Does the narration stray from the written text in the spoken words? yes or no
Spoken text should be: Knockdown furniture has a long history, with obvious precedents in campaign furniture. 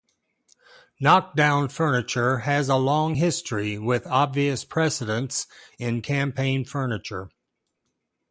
no